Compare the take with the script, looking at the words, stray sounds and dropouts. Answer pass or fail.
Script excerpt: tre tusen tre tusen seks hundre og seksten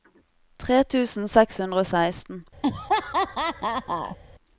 fail